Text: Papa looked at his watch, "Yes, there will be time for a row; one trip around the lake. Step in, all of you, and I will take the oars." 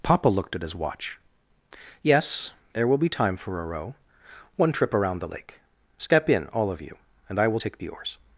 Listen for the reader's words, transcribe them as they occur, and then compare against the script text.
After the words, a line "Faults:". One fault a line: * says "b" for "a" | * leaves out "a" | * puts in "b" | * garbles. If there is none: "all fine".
Papa looked at his watch, "Yes, there will be time for a row; one trip around the lake. Step in, all of you, and I will take the oars."
Faults:
all fine